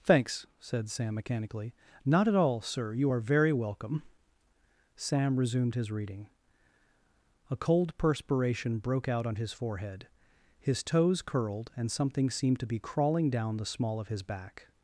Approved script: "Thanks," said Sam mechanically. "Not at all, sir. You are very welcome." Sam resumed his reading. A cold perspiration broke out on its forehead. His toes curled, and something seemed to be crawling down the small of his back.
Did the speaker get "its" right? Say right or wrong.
wrong